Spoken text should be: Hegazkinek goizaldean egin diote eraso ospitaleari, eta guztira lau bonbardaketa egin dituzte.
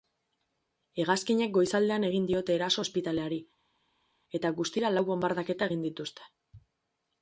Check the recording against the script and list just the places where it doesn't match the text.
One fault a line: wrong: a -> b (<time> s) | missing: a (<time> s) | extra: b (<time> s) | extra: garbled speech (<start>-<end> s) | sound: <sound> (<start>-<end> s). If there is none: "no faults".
no faults